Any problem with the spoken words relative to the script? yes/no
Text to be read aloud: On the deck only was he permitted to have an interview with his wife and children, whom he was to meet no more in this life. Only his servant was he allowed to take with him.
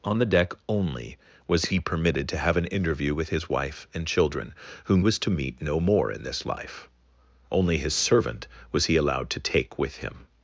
yes